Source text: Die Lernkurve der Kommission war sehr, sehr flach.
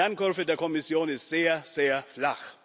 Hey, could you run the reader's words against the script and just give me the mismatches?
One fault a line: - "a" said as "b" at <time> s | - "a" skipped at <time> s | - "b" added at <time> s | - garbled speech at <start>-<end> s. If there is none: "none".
- "war" said as "ist" at 1.1 s